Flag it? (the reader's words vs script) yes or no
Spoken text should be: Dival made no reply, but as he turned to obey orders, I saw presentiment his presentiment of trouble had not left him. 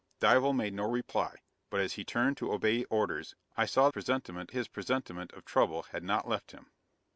no